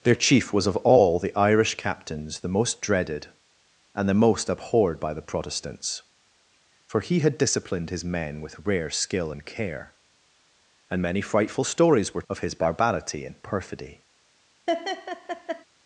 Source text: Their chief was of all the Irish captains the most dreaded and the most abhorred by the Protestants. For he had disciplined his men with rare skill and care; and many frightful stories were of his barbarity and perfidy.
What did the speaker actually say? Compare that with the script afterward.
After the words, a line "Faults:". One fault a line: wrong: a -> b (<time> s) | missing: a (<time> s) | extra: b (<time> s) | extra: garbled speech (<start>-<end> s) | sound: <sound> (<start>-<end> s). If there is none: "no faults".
Their chief was of all the Irish captains the most dreaded and the most abhorred by the Protestants. For he had disciplined his men with rare skill and care; and many frightful stories were of his barbarity and perfidy.
Faults:
sound: laugh (14.7-15.6 s)